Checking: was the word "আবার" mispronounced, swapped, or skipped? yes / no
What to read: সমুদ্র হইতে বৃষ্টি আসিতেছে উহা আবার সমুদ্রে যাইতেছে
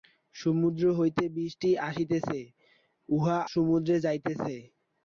yes